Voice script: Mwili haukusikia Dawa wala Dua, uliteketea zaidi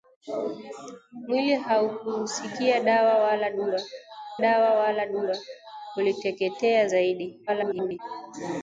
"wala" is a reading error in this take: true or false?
false